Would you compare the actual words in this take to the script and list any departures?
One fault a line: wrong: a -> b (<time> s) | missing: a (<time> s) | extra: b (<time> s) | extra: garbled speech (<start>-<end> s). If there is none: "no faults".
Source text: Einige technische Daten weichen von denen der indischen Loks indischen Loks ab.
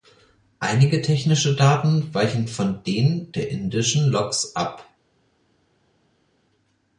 missing: indischen Loks (4.5 s)